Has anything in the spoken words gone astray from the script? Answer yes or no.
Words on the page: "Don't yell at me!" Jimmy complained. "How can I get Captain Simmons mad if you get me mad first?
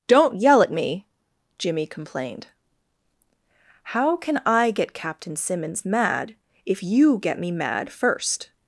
no